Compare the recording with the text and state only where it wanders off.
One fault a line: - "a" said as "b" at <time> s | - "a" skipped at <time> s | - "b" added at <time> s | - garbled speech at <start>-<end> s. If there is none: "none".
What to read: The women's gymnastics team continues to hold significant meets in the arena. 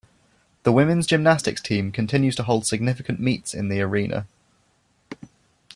none